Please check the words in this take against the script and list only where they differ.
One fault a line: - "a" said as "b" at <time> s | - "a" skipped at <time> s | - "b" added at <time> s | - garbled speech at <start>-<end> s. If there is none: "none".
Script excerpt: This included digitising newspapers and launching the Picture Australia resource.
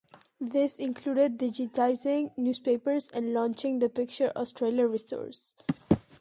none